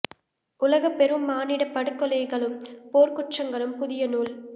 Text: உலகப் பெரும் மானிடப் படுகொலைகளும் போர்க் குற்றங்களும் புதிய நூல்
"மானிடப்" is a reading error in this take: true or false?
false